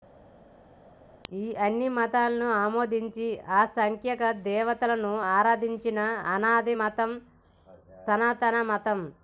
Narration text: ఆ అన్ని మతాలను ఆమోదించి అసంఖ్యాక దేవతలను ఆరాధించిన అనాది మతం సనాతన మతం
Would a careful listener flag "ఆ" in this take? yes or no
yes